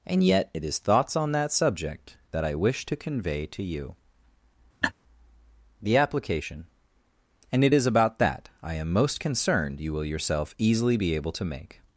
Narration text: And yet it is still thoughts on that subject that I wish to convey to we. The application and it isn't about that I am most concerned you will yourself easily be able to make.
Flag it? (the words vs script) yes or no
yes